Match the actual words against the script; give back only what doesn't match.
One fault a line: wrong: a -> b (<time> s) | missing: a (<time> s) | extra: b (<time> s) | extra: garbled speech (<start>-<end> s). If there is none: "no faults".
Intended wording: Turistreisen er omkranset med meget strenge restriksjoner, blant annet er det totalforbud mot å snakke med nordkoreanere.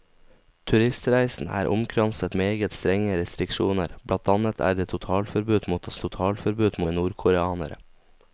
missing: med (2.4 s)
wrong: snakke -> totalforbud (6.0 s)